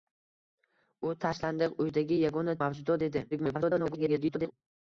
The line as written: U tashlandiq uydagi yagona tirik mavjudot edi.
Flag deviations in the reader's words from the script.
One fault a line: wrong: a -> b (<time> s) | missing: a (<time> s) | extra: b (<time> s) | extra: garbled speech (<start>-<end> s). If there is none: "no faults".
missing: tirik (2.5 s)
extra: garbled speech (3.3-4.5 s)